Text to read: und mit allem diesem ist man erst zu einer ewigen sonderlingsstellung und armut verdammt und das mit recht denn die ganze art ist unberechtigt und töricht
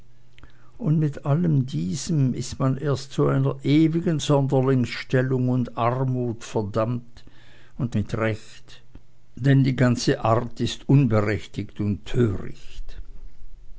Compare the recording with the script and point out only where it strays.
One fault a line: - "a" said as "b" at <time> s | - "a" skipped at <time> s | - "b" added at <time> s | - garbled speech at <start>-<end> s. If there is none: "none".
- "das" skipped at 8.0 s